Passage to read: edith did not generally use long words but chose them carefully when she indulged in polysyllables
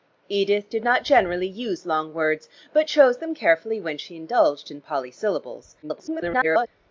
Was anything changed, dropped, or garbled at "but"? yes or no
no